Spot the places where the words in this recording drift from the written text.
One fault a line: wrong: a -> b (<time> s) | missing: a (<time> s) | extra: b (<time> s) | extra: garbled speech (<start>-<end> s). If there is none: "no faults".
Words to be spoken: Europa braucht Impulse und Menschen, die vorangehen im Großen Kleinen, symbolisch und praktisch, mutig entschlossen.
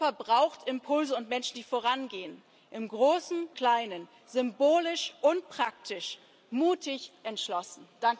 no faults